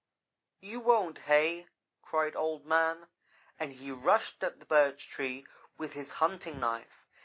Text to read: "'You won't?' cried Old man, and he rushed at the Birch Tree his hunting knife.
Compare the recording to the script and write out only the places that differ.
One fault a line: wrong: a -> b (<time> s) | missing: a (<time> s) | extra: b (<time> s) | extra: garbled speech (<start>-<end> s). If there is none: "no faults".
extra: hey (1.3 s)
extra: with (5.8 s)